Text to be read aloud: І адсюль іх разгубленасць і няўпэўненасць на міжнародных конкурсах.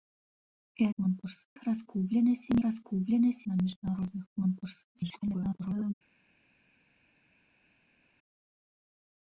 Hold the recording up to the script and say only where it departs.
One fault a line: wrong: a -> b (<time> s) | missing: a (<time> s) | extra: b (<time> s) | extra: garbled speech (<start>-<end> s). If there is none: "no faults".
wrong: адсюль -> конкурсах (1.0 s)
wrong: няўпэўненасць -> разгубленасць (2.7 s)
extra: garbled speech (4.9-5.9 s)